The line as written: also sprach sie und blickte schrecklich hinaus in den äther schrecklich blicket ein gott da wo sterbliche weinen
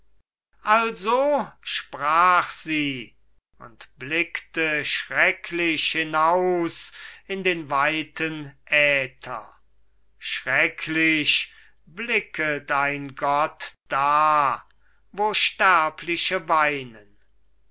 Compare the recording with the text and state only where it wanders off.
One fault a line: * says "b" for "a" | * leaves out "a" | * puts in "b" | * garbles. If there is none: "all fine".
* puts in "weiten"